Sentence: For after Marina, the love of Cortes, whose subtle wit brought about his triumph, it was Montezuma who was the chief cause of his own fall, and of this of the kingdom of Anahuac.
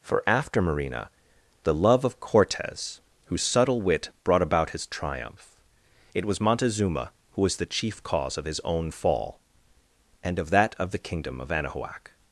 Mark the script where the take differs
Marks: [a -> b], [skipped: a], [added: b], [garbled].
For after Marina, the love of Cortes, whose subtle wit brought about his triumph, it was Montezuma who was the chief cause of his own fall, and of [this -> that] of the kingdom of Anahuac.